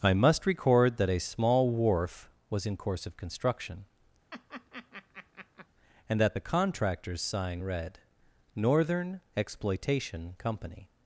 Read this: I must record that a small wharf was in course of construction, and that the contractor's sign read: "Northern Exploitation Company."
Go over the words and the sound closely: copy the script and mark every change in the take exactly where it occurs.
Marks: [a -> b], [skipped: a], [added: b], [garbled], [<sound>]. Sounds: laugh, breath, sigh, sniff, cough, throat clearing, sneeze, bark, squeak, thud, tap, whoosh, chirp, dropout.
I must record that a small wharf was in course of construction, [laugh] and that the contractor's sign read: "Northern Exploitation Company."